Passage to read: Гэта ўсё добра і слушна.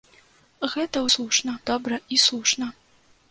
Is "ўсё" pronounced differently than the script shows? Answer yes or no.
yes